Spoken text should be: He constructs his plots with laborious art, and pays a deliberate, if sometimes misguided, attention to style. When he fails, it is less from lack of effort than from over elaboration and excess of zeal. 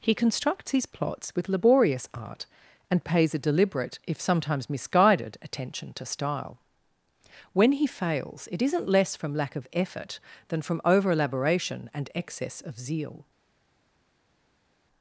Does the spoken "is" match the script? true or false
false